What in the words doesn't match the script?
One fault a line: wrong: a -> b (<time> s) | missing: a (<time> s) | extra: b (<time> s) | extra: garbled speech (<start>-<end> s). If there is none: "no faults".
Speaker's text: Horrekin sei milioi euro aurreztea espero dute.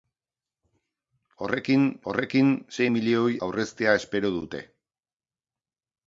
extra: horrekin (2.1 s)
missing: euro (3.3 s)